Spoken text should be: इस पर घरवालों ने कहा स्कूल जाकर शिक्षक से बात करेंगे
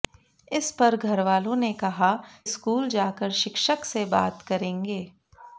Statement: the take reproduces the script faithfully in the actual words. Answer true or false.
true